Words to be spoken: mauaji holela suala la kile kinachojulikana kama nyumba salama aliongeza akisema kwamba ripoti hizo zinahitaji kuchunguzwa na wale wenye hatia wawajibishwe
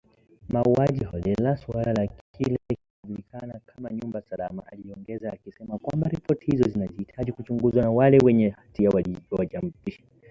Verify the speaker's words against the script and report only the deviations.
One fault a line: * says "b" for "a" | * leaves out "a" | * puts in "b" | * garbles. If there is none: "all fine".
all fine